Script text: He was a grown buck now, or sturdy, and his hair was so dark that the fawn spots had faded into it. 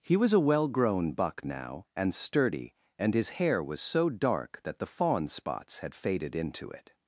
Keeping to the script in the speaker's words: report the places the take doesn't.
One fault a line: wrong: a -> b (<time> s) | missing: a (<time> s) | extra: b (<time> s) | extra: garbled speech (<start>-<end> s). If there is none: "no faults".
extra: well (0.4 s)
wrong: or -> and (1.9 s)